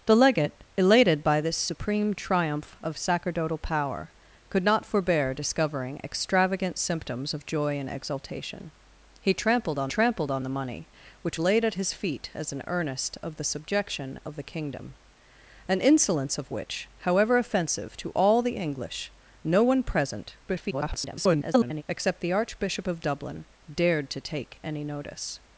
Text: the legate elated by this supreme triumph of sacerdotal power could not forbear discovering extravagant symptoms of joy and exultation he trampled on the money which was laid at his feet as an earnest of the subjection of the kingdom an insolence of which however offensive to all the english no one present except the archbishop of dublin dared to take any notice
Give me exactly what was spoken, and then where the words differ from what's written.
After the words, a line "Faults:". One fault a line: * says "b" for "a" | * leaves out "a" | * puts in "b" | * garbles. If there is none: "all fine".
the legate elated by this supreme triumph of sacerdotal power could not forbear discovering extravagant symptoms of joy and exultation he trampled on trampled on the money which laid at his feet as an earnest of the subjection of the kingdom an insolence of which however offensive to all the english no one present [garbled] except the archbishop of dublin dared to take any notice
Faults:
* puts in "trampled on"
* leaves out "was"
* garbles